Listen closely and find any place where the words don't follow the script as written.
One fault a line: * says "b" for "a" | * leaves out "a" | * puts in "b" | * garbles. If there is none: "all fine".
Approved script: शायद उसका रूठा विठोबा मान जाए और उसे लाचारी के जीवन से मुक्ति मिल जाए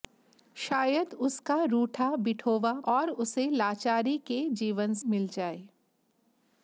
* leaves out "मान जाए"
* leaves out "से मुक्ति"